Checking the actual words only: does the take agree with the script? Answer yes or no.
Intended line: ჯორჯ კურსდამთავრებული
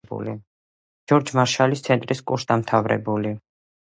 no